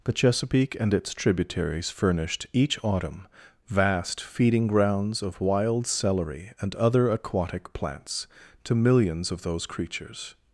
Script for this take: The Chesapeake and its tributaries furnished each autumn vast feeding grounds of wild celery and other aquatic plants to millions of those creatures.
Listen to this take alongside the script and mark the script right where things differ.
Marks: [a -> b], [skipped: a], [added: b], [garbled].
The Chesapeake and its tributaries furnished each autumn vast feeding grounds of wild celery and other aquatic plants to millions of those creatures.